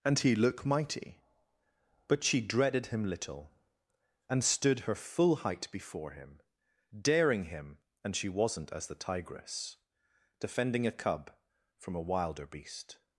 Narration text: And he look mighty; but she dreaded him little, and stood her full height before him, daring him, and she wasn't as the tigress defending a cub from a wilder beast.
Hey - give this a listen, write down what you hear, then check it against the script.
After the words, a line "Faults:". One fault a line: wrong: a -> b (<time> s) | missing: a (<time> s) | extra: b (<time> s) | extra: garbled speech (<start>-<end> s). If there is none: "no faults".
And he look mighty; but she dreaded him little, and stood her full height before him, daring him, and she wasn't as the tigress defending a cub from a wilder beast.
Faults:
no faults